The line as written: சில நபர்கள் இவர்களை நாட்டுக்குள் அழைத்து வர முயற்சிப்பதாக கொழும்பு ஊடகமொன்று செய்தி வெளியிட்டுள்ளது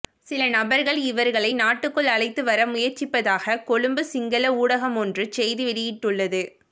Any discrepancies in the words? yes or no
yes